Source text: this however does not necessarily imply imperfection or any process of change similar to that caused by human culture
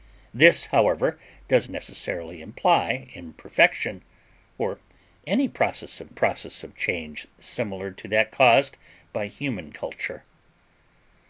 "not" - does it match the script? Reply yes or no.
no